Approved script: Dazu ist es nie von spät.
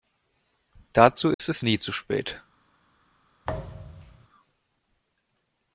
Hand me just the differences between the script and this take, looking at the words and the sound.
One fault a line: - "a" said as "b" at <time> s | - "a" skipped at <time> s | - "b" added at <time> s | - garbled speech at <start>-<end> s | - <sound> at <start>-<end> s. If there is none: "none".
- dropout at 1.3-1.4 s
- "von" said as "zu" at 1.8 s
- thud at 3.4-4.3 s